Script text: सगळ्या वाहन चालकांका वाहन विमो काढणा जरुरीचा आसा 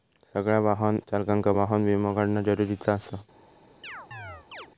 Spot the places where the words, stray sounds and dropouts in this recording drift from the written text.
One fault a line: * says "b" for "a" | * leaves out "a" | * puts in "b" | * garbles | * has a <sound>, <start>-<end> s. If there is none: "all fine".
* has a chirp, 3.8-4.7 s